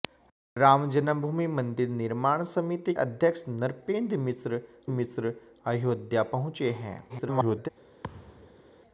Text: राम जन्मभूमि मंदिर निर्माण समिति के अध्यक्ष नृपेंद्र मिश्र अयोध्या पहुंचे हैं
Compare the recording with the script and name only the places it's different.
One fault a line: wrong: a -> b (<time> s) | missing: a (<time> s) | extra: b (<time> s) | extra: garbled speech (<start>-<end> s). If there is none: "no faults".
missing: के (2.9 s)
extra: मिश्र (4.9 s)
extra: garbled speech (7.1-7.7 s)